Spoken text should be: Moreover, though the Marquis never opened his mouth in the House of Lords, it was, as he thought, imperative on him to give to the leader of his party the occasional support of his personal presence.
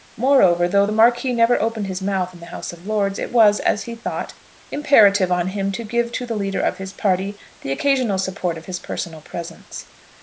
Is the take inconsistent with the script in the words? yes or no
no